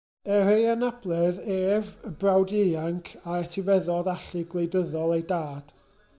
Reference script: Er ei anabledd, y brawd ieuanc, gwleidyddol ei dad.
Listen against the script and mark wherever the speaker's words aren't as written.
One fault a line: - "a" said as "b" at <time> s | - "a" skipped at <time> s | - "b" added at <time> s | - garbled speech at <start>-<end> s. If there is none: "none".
- "ef" added at 1.6 s
- "a etifeddodd allu" added at 3.2 s